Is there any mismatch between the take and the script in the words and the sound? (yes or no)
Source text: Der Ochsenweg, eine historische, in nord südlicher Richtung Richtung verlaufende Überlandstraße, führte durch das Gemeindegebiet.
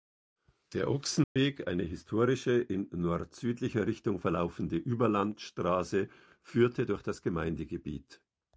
yes